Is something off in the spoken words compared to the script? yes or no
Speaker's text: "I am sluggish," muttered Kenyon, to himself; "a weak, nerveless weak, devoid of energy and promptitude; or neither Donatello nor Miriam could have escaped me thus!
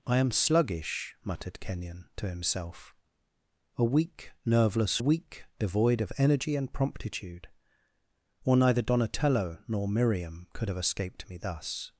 no